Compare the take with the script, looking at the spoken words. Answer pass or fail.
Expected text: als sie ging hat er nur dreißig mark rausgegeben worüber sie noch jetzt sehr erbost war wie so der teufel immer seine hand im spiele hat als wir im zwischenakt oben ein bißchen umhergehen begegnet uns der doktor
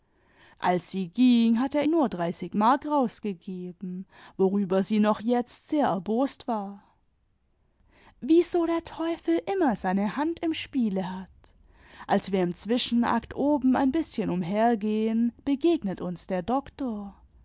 pass